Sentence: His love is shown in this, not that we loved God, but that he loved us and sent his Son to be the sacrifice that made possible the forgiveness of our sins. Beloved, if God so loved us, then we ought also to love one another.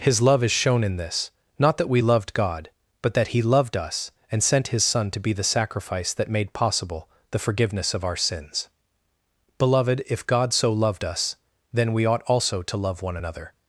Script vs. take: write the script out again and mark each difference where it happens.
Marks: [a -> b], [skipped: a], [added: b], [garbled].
His love is shown in this, not that we loved God, but that he loved us and sent his Son to be the sacrifice that made possible the forgiveness of our sins. Beloved, if God so loved us, then we ought also to love one another.